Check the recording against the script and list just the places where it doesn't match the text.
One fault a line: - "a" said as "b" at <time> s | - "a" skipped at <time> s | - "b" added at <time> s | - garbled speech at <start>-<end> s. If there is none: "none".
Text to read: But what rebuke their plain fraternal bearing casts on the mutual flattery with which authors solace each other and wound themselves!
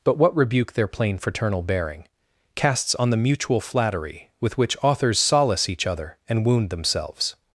none